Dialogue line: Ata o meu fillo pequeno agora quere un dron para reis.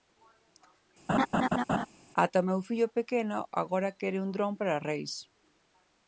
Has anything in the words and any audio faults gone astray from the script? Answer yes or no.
yes